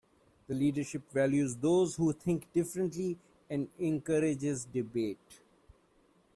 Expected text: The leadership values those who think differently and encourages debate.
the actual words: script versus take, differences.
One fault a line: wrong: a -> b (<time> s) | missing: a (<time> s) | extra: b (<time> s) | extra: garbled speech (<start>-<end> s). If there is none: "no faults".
no faults